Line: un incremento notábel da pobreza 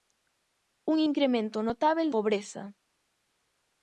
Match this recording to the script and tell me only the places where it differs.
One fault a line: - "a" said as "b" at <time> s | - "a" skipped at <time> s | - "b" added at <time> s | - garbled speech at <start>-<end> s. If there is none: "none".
- "da" skipped at 2.1 s